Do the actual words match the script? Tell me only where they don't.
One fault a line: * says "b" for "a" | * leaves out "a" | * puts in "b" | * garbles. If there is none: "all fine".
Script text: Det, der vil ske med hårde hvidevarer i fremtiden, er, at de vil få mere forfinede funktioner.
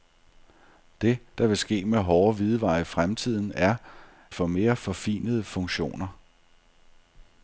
* leaves out "at de vil"